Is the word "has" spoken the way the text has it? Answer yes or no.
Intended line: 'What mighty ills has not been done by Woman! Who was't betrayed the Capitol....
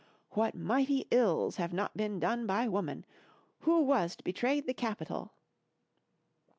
no